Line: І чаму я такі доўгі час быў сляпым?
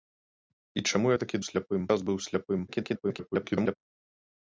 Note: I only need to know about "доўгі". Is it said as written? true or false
false